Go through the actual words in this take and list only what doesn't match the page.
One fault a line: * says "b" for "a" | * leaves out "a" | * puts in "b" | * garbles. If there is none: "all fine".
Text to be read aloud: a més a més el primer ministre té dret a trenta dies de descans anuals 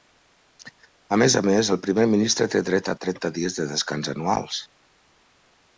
all fine